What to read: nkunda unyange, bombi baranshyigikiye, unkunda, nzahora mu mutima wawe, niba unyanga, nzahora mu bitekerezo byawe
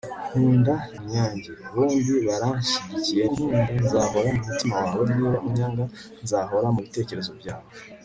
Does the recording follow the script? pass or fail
pass